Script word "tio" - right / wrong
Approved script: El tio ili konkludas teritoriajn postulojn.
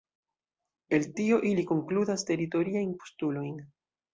right